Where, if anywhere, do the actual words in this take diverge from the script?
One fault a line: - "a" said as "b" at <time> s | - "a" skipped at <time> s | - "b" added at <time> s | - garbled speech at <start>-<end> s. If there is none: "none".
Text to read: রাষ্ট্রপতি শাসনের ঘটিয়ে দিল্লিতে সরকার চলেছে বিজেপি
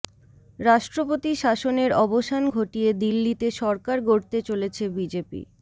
- "অবসান" added at 2.0 s
- "গড়তে" added at 4.0 s